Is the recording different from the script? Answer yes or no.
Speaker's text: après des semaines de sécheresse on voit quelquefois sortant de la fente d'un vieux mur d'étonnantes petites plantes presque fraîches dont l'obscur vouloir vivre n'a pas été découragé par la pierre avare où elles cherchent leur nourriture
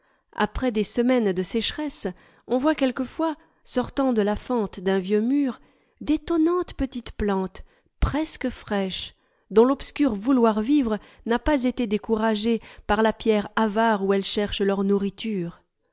no